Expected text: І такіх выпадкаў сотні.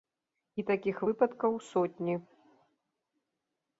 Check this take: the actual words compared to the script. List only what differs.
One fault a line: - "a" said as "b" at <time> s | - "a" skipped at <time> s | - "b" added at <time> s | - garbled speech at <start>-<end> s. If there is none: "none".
none